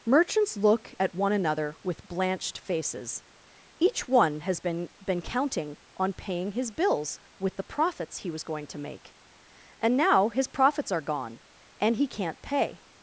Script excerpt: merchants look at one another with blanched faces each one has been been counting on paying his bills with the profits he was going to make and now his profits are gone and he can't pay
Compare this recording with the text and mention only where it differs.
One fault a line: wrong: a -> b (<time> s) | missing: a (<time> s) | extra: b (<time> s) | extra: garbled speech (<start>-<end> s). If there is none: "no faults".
no faults